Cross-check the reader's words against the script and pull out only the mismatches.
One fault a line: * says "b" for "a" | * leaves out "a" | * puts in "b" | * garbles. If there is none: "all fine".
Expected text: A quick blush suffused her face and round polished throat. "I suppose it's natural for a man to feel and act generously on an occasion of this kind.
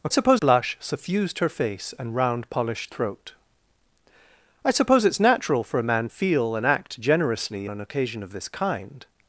* says "suppose" for "quick"
* leaves out "to"
* leaves out "on"